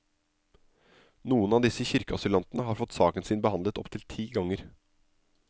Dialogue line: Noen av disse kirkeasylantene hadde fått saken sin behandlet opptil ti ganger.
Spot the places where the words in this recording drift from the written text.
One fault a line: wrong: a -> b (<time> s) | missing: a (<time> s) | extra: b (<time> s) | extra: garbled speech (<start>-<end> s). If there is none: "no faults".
wrong: hadde -> har (2.7 s)